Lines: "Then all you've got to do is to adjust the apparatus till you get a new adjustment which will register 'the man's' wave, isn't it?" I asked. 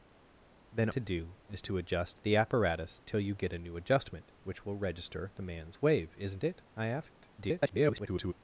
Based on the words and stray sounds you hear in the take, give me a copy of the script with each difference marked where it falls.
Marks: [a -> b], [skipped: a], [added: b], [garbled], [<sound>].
"Then [skipped: all you've got] to do is to adjust the apparatus till you get a new adjustment which will register 'the man's' wave, isn't it?" I asked. [garbled]